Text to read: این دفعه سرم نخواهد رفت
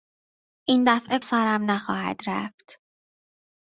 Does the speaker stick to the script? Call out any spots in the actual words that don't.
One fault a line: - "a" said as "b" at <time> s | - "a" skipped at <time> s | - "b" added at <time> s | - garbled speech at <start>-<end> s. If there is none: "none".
none